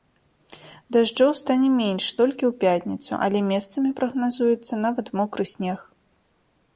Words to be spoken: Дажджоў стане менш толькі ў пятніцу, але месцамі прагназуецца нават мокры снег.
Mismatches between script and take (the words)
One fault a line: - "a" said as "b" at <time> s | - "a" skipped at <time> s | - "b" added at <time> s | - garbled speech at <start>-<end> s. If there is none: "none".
none